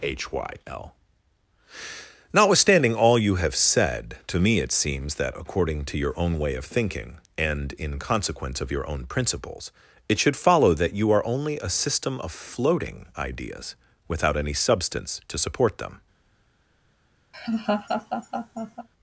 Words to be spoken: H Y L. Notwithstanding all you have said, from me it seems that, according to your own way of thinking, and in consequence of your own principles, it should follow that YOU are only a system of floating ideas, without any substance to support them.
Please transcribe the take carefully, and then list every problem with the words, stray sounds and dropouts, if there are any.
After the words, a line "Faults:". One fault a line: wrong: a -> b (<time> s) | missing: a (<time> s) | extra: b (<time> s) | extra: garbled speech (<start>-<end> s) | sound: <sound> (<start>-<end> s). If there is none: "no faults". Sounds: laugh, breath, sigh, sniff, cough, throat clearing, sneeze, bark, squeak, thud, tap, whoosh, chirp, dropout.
H Y L. Notwithstanding all you have said, to me it seems that, according to your own way of thinking, and in consequence of your own principles, it should follow that YOU are only a system of floating ideas, without any substance to support them.
Faults:
wrong: from -> to (4.3 s)
sound: laugh (17.3-18.9 s)